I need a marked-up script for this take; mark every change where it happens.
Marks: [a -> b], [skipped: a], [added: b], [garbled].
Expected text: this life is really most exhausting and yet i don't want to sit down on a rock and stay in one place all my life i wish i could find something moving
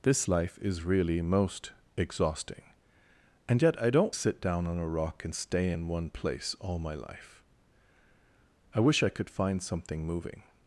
this life is really most exhausting and yet i don't [skipped: want to] sit down on a rock and stay in one place all my life i wish i could find something moving